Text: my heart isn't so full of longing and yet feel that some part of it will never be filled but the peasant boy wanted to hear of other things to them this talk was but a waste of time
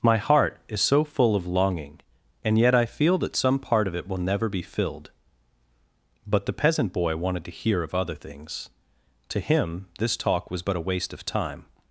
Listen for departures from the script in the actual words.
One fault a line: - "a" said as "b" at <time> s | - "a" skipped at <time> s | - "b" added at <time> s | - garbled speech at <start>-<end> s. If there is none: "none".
- "isn't" said as "is" at 0.7 s
- "i" added at 2.7 s
- "them" said as "him" at 9.4 s